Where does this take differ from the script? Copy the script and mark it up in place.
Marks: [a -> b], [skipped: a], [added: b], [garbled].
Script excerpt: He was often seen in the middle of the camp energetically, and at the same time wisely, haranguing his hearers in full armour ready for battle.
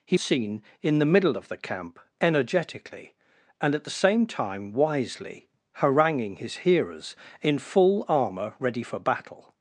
He [skipped: was often] seen in the middle of the camp energetically, and at the same time wisely, haranguing his hearers in full armour ready for battle.